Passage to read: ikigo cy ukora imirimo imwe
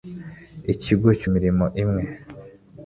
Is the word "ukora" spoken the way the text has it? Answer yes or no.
no